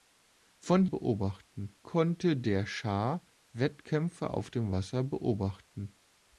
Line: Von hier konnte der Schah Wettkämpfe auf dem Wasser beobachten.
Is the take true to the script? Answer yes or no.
no